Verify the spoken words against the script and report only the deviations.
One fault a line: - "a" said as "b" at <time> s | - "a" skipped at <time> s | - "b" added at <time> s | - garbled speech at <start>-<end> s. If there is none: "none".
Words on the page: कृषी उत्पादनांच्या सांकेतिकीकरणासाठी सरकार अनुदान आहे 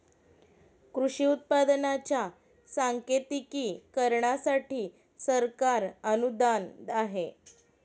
none